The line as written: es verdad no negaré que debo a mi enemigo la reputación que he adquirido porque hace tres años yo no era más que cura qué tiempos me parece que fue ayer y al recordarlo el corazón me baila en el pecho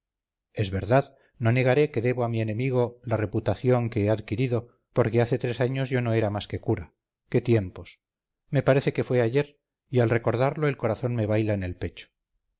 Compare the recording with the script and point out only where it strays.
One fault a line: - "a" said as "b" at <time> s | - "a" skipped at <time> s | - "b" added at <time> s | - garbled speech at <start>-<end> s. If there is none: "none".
none